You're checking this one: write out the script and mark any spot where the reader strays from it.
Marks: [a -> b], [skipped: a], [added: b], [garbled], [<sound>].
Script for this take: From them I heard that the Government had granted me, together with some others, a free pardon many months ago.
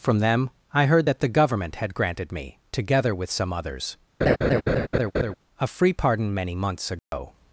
From them I heard that the Government had granted me, together with some others, [laugh] a free pardon many months ago. [dropout]